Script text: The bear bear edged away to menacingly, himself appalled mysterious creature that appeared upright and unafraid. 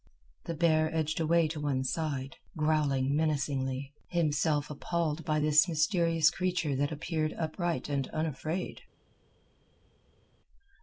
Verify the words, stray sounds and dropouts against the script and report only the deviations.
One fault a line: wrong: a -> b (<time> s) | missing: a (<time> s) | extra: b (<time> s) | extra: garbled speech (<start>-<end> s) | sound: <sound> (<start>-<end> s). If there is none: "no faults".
missing: bear (0.9 s)
extra: one side growling (1.6 s)
extra: by this (5.2 s)